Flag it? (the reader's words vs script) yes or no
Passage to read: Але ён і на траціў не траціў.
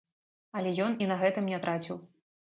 yes